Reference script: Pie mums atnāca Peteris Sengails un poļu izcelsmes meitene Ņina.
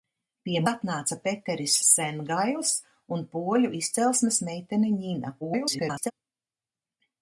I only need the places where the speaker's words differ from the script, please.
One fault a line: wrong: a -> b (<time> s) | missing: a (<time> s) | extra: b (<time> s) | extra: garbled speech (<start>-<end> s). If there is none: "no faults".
missing: mums (0.6 s)
extra: garbled speech (5.4-6.1 s)